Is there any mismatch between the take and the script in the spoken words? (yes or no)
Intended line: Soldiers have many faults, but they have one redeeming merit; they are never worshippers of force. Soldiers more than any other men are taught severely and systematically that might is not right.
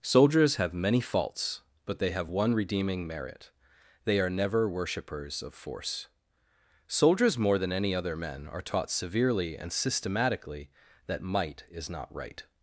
no